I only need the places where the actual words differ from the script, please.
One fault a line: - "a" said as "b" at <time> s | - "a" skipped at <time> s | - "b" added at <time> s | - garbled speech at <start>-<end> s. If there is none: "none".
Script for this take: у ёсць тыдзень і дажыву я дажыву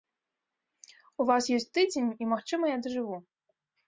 - "вас" added at 1.3 s
- "дажыву" said as "магчыма" at 2.3 s